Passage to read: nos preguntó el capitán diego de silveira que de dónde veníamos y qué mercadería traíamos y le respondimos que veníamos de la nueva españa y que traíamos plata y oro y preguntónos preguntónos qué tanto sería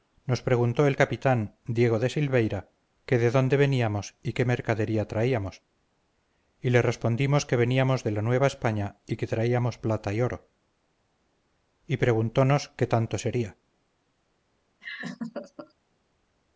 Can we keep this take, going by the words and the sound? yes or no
no